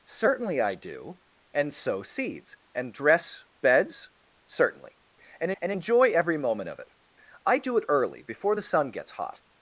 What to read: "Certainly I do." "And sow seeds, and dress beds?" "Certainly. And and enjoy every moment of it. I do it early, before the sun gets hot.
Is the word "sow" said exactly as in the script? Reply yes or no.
yes